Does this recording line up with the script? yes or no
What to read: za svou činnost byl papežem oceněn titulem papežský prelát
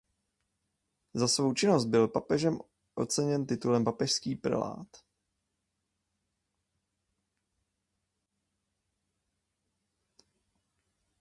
yes